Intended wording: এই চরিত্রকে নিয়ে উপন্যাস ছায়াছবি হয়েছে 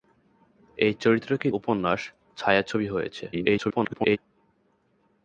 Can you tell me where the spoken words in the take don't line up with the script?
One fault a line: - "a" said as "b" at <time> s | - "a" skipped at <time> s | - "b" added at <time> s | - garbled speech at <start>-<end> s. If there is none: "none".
- "নিয়ে" skipped at 1.5 s
- garbled speech at 3.3-4.2 s